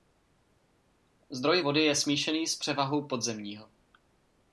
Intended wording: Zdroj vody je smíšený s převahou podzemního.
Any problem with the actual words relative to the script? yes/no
no